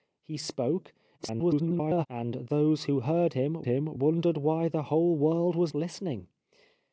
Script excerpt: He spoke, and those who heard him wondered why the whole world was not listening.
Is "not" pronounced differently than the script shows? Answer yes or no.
yes